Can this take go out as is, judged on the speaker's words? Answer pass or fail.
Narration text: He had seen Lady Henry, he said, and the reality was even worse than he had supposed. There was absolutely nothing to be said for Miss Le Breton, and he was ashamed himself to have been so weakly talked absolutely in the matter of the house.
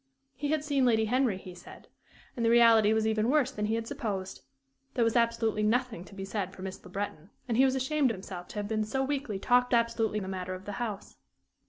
pass